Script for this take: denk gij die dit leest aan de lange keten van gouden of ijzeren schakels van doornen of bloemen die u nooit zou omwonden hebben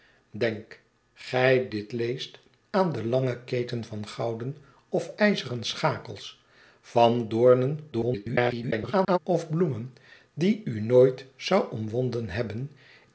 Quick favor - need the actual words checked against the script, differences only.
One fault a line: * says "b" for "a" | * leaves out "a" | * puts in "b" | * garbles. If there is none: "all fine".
* leaves out "die"
* garbles